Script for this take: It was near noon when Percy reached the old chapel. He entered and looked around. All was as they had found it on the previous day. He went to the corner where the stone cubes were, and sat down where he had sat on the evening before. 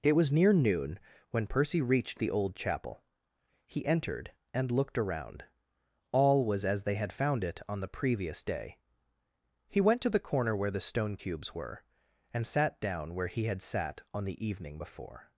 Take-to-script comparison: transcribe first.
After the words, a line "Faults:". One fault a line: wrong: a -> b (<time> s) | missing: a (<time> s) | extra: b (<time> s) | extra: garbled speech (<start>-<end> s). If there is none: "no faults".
It was near noon when Percy reached the old chapel. He entered and looked around. All was as they had found it on the previous day. He went to the corner where the stone cubes were, and sat down where he had sat on the evening before.
Faults:
no faults